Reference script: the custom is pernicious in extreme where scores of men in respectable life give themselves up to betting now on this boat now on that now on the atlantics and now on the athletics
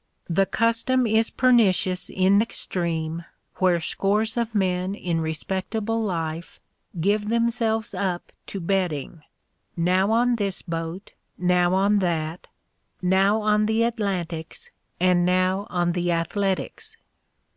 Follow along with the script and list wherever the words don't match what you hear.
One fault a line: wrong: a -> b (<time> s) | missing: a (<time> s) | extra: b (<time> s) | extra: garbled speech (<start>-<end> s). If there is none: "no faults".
no faults